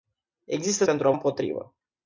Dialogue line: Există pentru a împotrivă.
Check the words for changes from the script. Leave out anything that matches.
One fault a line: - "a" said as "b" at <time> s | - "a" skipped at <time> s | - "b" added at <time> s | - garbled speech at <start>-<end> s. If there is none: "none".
none